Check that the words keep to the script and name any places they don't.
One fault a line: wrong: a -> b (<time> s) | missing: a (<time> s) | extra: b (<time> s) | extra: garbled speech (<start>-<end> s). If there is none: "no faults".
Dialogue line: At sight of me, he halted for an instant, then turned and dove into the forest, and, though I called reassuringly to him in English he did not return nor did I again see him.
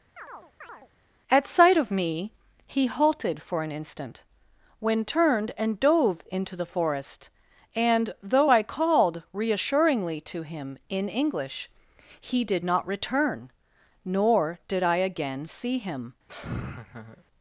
wrong: then -> when (4.8 s)